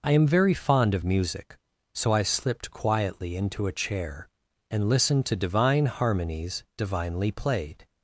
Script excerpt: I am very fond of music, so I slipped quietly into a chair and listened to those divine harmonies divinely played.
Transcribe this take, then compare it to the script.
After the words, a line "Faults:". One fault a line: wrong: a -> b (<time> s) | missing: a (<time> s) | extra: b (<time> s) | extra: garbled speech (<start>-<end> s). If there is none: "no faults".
I am very fond of music, so I slipped quietly into a chair and listened to divine harmonies divinely played.
Faults:
missing: those (5.4 s)